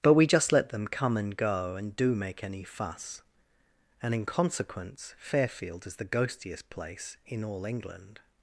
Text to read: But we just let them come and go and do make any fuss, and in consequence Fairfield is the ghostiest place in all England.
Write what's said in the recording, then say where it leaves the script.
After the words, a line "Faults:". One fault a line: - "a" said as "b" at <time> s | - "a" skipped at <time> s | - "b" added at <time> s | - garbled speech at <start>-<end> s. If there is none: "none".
But we just let them come and go and do make any fuss, and in consequence Fairfield is the ghostiest place in all England.
Faults:
none